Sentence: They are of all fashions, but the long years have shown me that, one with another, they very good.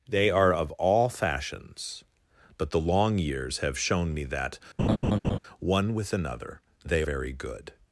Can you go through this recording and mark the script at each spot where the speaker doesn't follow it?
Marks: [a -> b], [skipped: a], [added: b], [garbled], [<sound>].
They are of all fashions, but the long years have shown me that, [laugh] one with another, they very good.